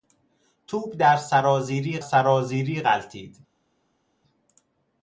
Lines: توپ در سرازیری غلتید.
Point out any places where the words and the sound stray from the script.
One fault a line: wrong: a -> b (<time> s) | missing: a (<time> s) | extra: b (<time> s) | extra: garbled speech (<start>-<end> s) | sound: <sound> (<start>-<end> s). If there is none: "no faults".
extra: سرازیری (2.0 s)